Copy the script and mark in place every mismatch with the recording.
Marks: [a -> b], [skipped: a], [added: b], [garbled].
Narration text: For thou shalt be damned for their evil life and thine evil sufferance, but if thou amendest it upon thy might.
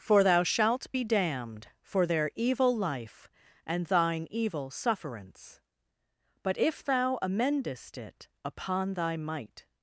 For thou shalt be damned for their evil life and thine evil sufferance, but if thou amendest it upon thy might.